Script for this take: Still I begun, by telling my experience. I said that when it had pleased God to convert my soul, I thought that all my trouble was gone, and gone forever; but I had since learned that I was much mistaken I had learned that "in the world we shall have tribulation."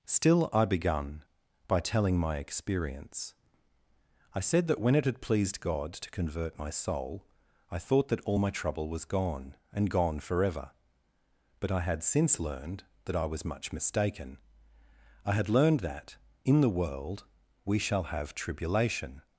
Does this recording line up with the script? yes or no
yes